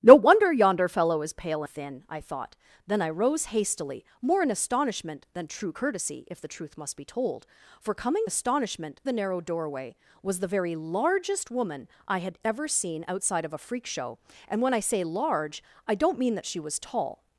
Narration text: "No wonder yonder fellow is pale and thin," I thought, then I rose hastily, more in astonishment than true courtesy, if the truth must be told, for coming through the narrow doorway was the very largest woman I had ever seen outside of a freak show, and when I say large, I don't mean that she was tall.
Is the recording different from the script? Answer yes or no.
yes